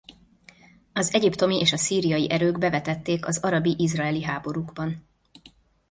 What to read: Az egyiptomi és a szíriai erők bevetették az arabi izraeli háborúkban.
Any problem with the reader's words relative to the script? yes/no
no